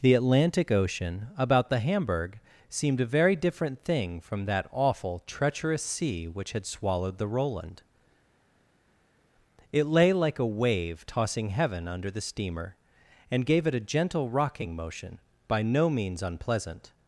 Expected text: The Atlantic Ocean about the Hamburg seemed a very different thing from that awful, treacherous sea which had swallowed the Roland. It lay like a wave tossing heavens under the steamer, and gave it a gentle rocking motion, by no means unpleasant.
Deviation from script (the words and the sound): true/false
true